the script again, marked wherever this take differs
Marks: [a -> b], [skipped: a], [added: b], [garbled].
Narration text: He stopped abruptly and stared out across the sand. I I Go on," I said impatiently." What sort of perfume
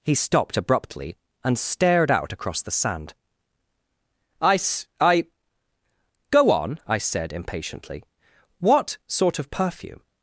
He stopped abruptly and stared out across the sand. I [added: s] I Go on," I said impatiently." What sort of perfume